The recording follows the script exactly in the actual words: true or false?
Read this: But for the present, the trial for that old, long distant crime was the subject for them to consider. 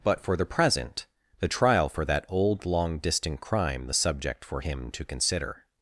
false